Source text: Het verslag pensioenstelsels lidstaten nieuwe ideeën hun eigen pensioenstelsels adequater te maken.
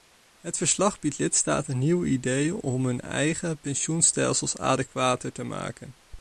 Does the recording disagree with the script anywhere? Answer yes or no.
yes